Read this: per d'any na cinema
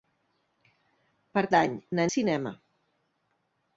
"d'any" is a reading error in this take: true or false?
false